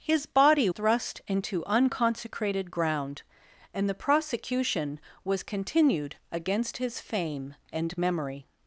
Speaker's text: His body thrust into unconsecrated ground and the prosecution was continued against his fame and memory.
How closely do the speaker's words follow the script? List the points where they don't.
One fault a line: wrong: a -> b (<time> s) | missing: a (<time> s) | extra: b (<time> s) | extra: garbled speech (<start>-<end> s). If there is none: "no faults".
no faults